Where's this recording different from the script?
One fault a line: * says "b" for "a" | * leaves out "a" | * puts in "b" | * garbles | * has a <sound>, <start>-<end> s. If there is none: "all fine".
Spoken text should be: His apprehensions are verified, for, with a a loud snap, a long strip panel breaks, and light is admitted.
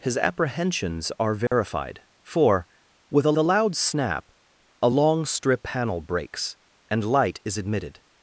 * has a dropout, 1.5-1.5 s